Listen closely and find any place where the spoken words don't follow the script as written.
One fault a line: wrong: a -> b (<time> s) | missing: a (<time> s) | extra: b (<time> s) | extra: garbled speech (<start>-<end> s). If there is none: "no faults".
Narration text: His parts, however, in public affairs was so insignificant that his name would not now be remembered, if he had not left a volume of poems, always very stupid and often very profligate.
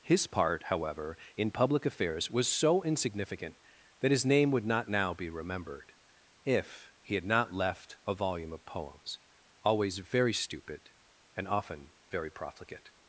wrong: parts -> part (0.3 s)